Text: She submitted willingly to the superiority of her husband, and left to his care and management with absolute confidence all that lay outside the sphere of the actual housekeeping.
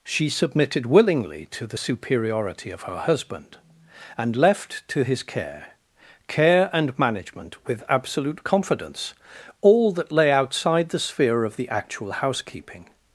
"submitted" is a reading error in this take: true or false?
false